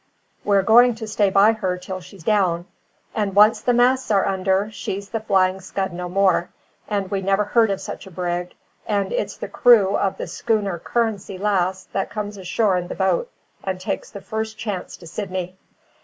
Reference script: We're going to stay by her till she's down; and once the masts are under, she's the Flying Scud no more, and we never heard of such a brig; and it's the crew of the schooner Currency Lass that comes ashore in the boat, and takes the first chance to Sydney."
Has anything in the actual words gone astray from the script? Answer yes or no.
no